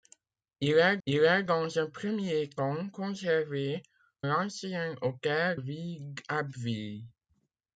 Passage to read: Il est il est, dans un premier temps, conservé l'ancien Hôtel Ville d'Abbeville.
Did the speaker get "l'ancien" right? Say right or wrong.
right